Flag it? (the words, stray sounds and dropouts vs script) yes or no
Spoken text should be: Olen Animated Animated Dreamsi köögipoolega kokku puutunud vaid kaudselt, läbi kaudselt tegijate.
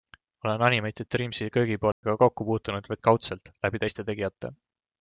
yes